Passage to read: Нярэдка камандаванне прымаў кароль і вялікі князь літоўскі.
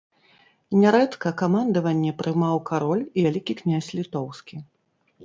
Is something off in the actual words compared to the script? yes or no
no